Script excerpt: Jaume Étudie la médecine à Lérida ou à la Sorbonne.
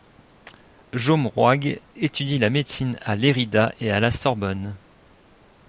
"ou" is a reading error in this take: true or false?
true